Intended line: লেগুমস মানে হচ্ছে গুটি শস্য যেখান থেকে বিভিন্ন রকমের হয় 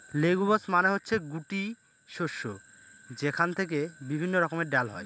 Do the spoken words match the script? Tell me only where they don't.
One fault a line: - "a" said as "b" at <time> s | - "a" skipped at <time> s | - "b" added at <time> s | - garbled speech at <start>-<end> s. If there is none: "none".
- "ডাল" added at 4.7 s